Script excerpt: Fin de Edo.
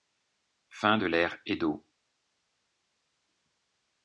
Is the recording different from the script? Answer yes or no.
yes